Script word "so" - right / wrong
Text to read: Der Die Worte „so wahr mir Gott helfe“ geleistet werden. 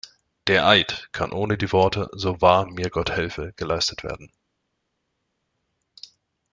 right